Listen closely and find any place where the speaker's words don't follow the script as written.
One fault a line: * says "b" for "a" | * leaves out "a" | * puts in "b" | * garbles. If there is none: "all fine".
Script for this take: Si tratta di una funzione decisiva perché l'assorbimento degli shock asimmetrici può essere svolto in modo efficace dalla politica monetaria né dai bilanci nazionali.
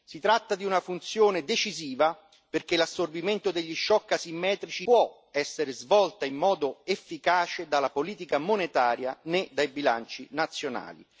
all fine